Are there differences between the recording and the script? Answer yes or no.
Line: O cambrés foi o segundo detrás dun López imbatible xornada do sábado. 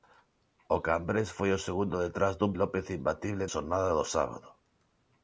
no